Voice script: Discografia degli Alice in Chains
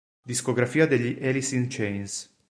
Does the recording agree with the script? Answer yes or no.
yes